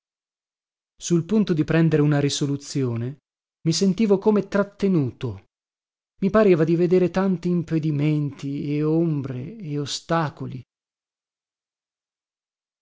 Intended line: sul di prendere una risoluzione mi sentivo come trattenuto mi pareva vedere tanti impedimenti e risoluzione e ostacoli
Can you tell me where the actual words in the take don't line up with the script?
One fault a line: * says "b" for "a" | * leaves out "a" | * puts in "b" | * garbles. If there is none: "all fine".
* puts in "punto"
* puts in "di"
* says "ombre" for "risoluzione"